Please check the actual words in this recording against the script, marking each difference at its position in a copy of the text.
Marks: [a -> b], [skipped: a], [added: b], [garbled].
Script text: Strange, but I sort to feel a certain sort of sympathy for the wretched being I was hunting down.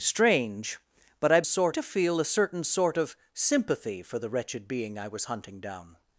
Strange, but I sort to feel a certain sort of sympathy for the wretched being I was hunting down.